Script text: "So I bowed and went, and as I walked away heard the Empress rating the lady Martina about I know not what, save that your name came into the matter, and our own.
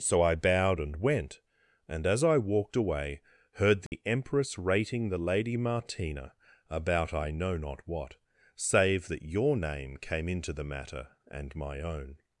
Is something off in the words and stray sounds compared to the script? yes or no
yes